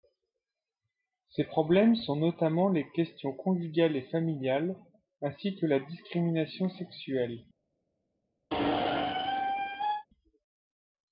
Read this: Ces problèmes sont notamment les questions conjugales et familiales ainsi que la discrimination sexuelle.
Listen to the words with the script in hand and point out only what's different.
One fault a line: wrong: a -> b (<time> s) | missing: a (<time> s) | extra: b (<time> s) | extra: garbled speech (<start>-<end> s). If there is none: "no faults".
no faults